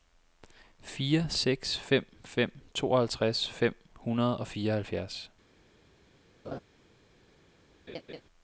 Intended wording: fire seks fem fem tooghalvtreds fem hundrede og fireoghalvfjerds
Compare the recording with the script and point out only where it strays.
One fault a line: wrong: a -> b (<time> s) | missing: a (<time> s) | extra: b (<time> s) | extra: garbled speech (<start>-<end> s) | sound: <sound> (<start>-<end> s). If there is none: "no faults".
sound: laugh (6.4-6.6 s)
sound: laugh (7.9-8.2 s)